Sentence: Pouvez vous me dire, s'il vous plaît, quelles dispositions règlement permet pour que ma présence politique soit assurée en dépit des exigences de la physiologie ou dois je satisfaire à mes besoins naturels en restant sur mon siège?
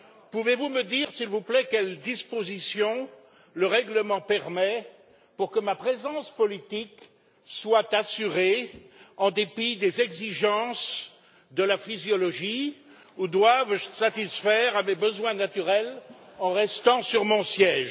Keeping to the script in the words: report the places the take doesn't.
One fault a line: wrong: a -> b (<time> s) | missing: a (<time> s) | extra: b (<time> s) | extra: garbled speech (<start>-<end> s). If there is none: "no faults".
extra: le (3.5 s)